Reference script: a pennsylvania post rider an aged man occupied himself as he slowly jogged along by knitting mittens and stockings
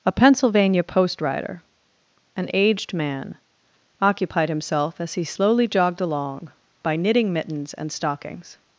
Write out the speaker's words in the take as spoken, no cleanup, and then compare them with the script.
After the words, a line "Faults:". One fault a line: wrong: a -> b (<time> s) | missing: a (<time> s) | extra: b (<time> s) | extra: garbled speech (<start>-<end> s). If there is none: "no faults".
a pennsylvania post rider an aged man occupied himself as he slowly jogged along by knitting mittens and stockings
Faults:
no faults